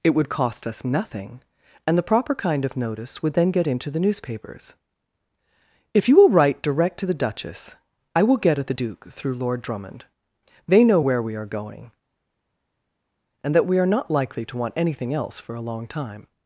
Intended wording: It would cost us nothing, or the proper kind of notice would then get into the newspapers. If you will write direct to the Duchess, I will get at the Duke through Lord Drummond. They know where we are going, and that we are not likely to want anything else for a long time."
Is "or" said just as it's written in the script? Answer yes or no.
no